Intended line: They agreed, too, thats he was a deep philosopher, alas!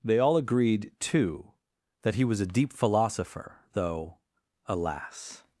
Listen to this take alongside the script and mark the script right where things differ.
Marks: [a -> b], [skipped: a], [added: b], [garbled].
They [added: all] agreed, too, [thats -> that] he was a deep philosopher, [added: though] alas!